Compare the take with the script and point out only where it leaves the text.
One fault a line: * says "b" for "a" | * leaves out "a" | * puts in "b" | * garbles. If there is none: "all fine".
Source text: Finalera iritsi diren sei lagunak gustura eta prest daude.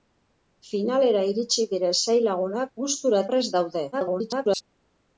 * leaves out "eta"
* garbles